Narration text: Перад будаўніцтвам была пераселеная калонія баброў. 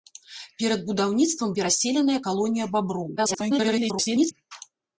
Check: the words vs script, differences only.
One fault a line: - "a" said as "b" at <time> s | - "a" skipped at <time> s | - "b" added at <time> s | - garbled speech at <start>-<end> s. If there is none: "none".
- "была" skipped at 1.5 s
- garbled speech at 3.2-4.3 s